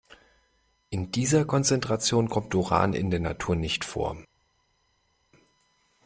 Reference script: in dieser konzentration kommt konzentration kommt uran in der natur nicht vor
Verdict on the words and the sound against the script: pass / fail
fail